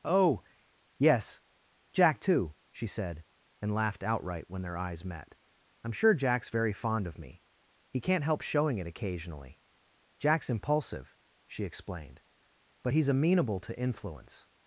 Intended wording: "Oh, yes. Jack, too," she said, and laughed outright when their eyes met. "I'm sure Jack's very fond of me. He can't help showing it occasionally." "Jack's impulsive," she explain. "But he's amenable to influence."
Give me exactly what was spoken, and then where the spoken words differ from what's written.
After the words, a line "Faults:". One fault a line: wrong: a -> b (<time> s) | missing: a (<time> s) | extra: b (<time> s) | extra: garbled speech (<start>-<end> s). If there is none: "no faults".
"Oh, yes. Jack, too," she said, and laughed outright when their eyes met. "I'm sure Jack's very fond of me. He can't help showing it occasionally." "Jack's impulsive," she explained. "But he's amenable to influence."
Faults:
wrong: explain -> explained (11.6 s)